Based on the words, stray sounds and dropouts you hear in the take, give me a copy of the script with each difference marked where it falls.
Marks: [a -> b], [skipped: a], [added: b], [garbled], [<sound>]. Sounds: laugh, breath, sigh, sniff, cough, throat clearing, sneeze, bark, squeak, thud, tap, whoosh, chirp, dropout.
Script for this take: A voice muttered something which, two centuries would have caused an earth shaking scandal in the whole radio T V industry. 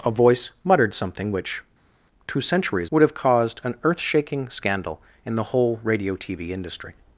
A voice muttered something which, two centuries would have caused an earth shaking scandal in the whole radio T V industry.